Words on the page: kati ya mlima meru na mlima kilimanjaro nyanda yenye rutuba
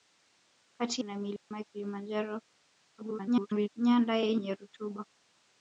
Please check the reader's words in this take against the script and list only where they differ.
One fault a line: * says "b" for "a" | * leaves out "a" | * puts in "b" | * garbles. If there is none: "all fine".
* leaves out "ya mlima meru"
* garbles